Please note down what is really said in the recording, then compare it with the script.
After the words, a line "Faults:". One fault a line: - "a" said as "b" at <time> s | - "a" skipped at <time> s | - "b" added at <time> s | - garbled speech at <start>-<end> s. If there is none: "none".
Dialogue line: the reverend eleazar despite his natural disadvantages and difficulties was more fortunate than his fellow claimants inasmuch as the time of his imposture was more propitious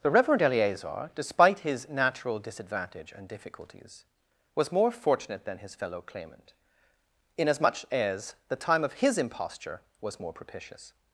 the reverend eleazar despite his natural disadvantage and difficulties was more fortunate than his fellow claimant inasmuch as the time of his imposture was more propitious
Faults:
- "disadvantages" said as "disadvantage" at 2.4 s
- "claimants" said as "claimant" at 6.0 s